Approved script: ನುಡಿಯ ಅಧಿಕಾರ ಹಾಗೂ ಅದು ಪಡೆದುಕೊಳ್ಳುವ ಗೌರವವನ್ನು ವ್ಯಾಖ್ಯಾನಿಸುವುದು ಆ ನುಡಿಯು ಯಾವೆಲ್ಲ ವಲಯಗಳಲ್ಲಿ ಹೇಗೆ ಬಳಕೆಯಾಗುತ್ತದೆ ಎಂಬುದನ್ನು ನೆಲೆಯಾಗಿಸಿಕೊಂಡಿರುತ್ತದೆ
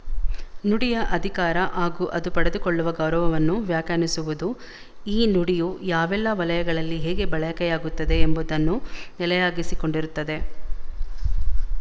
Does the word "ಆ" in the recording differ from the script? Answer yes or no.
yes